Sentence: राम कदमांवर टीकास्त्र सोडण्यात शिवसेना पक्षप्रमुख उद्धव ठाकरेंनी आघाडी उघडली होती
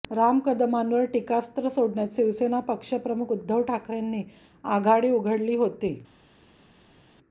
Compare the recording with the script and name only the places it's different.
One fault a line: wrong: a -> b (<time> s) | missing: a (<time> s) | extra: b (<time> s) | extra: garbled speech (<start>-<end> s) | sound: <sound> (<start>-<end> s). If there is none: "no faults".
no faults